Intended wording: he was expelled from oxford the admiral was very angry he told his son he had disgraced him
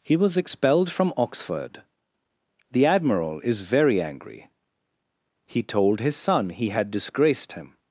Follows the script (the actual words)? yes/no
no